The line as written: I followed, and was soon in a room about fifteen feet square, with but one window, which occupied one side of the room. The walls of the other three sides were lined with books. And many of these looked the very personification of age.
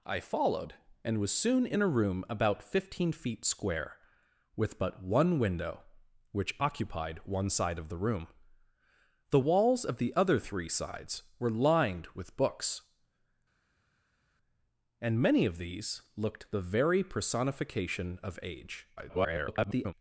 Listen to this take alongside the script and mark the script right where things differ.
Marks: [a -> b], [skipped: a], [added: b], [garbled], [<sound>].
I followed, and was soon in a room about fifteen feet square, with but one window, which occupied one side of the room. The walls of the other three sides were lined with books. And many of these looked the very personification of age. [garbled]